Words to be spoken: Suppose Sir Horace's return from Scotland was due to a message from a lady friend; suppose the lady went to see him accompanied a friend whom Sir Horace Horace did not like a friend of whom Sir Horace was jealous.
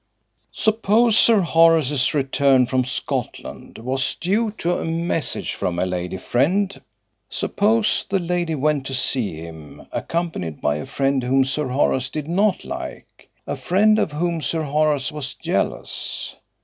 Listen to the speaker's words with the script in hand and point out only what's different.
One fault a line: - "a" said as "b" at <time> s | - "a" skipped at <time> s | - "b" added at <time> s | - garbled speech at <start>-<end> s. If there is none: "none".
- "by" added at 10.6 s
- "Horace" skipped at 12.1 s